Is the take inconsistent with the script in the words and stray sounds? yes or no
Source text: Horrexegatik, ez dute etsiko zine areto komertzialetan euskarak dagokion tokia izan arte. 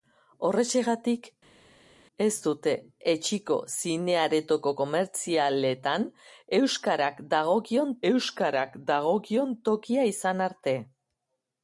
yes